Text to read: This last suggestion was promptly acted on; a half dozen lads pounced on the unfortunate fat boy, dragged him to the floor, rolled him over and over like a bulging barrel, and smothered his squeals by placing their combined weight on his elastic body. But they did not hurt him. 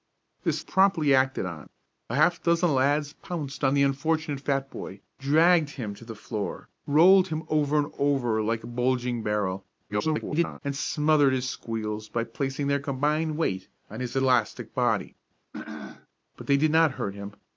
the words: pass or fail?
fail